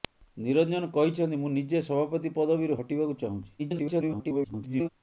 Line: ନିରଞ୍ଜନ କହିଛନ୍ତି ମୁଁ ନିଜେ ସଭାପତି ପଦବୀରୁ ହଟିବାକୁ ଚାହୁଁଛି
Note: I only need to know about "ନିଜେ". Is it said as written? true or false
true